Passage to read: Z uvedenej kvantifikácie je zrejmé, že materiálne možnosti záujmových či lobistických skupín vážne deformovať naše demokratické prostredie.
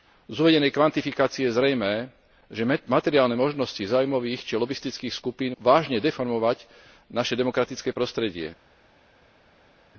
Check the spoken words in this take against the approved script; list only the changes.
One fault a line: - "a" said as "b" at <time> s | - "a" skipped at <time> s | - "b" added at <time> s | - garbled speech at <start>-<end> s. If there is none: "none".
none